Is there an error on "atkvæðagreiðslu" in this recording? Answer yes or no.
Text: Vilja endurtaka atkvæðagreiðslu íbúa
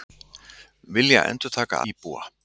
yes